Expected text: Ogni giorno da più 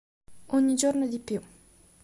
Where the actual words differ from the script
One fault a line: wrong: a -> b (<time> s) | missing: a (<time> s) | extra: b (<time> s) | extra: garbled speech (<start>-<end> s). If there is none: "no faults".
wrong: da -> di (1.1 s)